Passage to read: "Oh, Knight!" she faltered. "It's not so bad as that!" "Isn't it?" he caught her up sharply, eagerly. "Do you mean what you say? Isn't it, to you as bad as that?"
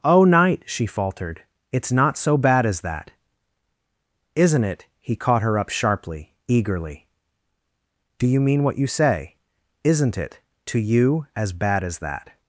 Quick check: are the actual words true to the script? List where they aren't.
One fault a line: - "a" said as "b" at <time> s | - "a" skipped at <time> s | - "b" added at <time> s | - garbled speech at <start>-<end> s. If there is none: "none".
none